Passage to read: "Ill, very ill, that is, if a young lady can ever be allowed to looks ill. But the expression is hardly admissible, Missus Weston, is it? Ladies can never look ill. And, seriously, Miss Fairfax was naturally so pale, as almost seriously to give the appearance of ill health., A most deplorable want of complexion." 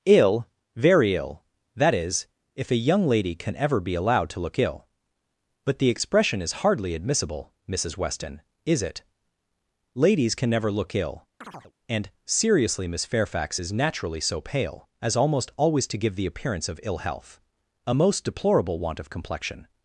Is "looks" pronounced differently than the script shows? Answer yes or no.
yes